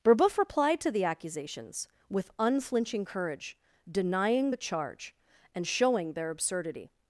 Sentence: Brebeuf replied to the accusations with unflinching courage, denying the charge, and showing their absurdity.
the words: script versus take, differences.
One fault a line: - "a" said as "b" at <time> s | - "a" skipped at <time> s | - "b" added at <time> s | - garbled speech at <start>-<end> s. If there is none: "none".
none